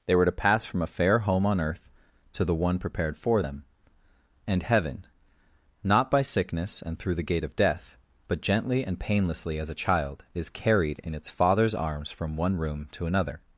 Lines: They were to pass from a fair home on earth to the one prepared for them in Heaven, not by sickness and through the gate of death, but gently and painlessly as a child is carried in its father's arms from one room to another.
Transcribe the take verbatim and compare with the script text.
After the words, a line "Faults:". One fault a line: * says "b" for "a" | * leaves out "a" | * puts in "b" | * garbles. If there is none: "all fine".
They were to pass from a fair home on earth to the one prepared for them and Heaven, not by sickness and through the gate of death, but gently and painlessly as a child is carried in its father's arms from one room to another.
Faults:
* says "and" for "in"